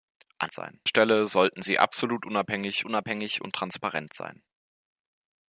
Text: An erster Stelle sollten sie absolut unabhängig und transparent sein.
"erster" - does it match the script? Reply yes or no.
no